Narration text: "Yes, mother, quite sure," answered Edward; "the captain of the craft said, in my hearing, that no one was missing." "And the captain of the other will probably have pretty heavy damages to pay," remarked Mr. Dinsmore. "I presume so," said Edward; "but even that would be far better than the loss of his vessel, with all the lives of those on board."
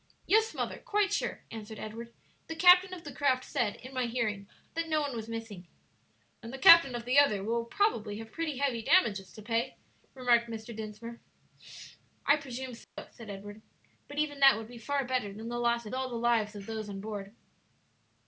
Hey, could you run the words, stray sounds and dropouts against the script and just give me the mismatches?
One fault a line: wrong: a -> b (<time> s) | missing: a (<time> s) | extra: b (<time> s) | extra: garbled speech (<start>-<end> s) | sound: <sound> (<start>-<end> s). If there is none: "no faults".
sound: dropout (12.8-13.0 s)
missing: his vessel with (15.9 s)